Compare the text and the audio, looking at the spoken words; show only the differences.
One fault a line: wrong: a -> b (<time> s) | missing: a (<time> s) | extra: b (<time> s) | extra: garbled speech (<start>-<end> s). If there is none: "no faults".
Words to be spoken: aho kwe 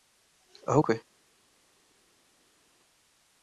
no faults